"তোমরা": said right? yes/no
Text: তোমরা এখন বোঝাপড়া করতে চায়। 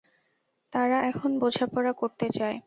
no